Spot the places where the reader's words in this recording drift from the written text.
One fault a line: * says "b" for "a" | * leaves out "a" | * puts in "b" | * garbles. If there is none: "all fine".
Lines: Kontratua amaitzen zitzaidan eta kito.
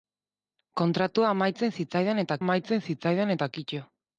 * puts in "amaitzen zitzaidan eta"